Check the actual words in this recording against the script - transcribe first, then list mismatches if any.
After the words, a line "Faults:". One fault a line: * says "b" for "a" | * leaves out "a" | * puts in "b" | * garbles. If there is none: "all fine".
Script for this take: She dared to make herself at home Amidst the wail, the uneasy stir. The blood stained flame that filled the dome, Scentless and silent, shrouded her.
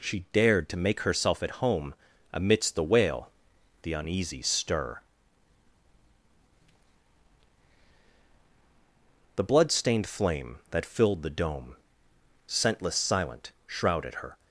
She dared to make herself at home Amidst the wail, the uneasy stir. The blood stained flame that filled the dome, Scentless silent, shrouded her.
Faults:
* leaves out "and"